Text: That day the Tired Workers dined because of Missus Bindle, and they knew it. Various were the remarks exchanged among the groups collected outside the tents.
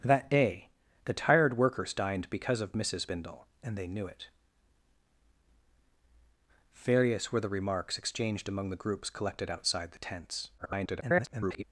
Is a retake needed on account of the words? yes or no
yes